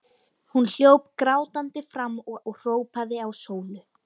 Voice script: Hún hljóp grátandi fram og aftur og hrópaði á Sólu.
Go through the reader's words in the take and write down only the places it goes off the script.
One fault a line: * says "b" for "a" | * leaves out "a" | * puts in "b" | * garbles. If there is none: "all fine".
* leaves out "aftur"